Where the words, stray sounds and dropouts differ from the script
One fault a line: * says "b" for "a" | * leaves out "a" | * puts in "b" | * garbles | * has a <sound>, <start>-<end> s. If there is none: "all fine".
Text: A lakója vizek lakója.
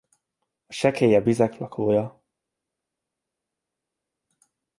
* says "sekélyebb" for "lakója"